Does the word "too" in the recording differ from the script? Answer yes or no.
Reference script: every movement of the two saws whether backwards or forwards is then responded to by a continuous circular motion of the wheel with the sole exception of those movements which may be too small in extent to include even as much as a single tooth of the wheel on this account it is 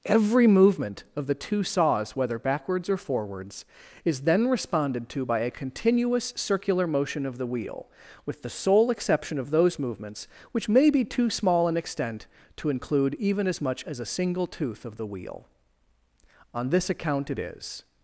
no